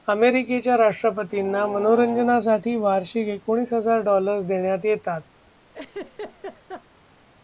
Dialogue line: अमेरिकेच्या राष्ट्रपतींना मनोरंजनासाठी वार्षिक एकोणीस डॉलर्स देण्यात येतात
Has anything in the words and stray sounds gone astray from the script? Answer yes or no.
yes